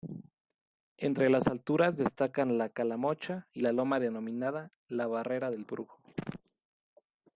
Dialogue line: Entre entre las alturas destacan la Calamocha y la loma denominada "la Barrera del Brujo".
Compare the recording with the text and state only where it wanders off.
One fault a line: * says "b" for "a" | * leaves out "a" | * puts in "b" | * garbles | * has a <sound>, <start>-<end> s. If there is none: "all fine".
* leaves out "entre"